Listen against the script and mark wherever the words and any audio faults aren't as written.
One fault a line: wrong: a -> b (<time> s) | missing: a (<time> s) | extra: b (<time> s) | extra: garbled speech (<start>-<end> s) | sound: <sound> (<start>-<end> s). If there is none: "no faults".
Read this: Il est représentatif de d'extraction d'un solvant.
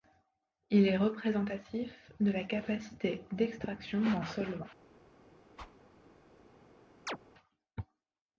extra: la capacité (2.3 s)
sound: whoosh (5.6-5.8 s)
sound: chirp (7.1-7.2 s)